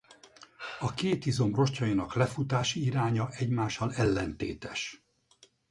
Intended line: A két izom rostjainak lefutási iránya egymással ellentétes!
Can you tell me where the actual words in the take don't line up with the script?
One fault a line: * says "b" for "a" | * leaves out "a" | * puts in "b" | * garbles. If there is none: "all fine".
all fine